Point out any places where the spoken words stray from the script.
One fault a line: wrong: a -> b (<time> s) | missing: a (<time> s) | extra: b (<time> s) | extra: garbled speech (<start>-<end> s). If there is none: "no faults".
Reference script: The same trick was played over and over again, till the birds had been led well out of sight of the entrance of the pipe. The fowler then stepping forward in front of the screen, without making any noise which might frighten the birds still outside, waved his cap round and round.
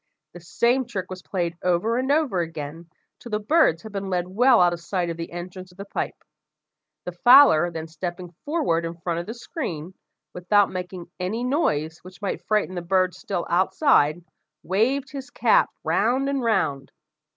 no faults